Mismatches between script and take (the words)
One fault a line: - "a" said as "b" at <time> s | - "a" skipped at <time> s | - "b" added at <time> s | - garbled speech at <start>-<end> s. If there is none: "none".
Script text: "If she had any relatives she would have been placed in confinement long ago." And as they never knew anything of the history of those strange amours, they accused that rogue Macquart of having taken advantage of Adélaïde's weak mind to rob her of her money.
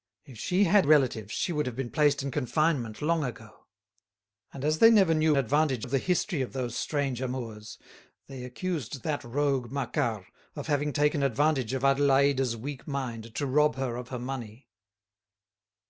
- "any" skipped at 0.9 s
- "anything" said as "advantage" at 5.4 s